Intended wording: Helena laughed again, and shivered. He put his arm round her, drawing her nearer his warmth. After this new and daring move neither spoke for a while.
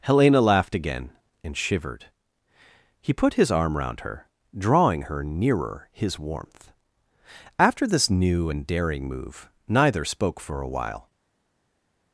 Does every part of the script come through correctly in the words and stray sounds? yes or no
yes